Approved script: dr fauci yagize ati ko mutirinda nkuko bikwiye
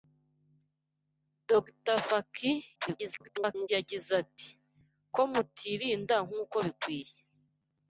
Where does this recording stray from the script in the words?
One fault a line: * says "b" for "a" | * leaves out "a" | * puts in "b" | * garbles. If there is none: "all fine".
* garbles